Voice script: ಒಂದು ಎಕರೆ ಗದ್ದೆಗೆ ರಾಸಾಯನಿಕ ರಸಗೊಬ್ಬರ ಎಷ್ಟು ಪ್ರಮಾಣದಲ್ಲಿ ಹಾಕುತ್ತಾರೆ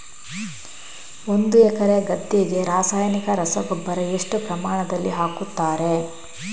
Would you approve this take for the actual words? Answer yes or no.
yes